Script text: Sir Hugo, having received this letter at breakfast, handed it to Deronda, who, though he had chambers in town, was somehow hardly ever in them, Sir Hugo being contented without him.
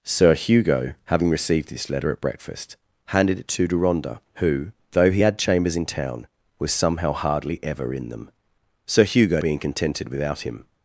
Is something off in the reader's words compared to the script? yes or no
no